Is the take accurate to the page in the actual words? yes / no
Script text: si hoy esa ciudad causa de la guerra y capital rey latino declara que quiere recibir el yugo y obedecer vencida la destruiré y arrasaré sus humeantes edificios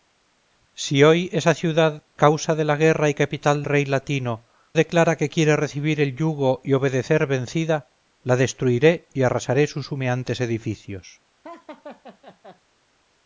yes